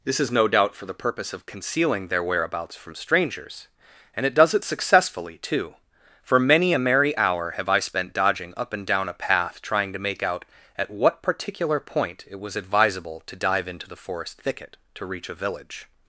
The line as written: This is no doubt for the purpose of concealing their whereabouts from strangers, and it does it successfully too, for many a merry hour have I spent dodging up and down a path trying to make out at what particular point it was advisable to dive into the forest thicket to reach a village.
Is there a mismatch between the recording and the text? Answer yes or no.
no